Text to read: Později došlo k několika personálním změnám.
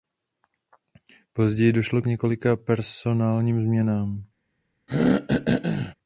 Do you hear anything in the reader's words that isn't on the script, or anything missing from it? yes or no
no